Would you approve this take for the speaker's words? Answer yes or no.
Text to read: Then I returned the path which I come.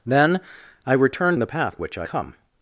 yes